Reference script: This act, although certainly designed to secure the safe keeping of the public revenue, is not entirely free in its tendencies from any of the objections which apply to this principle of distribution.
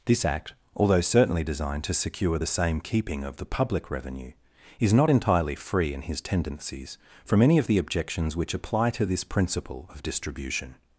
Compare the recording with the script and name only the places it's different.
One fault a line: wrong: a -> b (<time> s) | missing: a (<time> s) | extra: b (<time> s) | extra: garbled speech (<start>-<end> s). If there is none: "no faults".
wrong: safe -> same (2.5 s)
wrong: its -> his (6.0 s)